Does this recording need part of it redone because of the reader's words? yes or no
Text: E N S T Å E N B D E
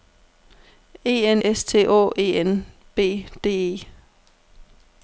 no